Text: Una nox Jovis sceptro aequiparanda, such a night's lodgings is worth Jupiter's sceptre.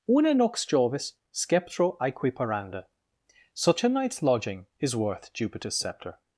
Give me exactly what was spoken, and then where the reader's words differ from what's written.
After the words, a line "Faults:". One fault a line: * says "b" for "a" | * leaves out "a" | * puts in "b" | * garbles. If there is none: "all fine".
Una nox Jovis sceptro aequiparanda, such a night's lodging is worth Jupiter's sceptre.
Faults:
* says "lodging" for "lodgings"